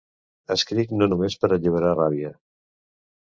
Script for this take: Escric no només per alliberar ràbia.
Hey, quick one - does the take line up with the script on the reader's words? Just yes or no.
yes